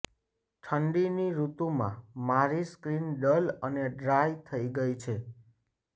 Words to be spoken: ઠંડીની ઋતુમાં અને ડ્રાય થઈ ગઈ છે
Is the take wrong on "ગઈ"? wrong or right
right